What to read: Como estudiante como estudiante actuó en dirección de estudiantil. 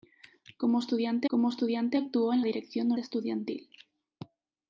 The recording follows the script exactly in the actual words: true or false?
true